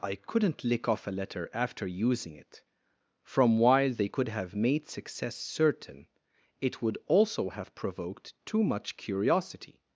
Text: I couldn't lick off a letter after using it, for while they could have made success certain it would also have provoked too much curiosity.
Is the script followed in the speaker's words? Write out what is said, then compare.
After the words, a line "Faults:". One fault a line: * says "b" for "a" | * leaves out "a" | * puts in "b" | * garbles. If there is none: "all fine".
I couldn't lick off a letter after using it, from while they could have made success certain it would also have provoked too much curiosity.
Faults:
* says "from" for "for"